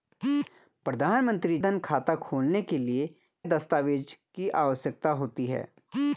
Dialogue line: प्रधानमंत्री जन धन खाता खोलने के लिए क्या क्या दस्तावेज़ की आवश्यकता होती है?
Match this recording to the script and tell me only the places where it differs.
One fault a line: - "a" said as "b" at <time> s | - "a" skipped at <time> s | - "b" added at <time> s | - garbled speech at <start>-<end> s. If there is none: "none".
- "जन" skipped at 1.6 s
- "क्या क्या" skipped at 3.1 s